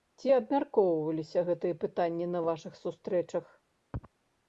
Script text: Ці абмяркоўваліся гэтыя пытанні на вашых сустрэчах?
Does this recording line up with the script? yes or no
yes